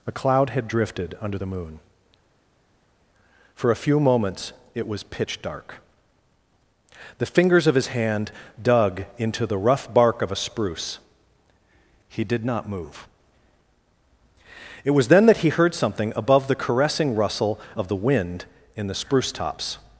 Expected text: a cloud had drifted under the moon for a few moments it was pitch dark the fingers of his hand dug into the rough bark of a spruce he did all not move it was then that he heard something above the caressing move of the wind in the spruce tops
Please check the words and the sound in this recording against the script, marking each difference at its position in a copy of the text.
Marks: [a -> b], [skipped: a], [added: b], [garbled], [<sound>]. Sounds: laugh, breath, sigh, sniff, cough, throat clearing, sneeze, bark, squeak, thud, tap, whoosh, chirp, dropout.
a cloud had drifted under the moon for a few moments it was pitch dark the fingers of his hand dug into the rough bark of a spruce he did [skipped: all] not move it was then that he heard something above the caressing [move -> rustle] of the wind in the spruce tops